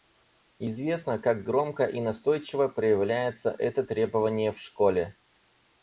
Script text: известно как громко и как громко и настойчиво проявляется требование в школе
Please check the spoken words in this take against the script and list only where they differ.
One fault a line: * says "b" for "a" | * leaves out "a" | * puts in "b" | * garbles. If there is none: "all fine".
* leaves out "как громко и"
* puts in "это"